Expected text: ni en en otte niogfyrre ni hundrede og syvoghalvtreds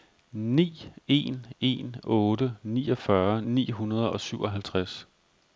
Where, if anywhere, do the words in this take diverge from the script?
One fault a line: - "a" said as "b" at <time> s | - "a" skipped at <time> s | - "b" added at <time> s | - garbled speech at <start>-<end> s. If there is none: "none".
none